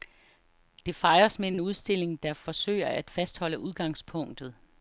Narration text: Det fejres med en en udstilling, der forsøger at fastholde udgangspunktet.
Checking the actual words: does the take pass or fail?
pass